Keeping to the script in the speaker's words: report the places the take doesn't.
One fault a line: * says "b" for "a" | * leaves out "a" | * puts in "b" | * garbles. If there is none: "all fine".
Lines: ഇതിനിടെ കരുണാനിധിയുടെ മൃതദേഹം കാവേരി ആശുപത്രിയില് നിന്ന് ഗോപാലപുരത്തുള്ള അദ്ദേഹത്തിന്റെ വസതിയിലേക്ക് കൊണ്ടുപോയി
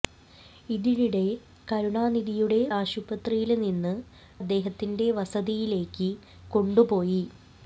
* leaves out "മൃതദേഹം കാവേരി"
* leaves out "ഗോപാലപുരത്തുള്ള"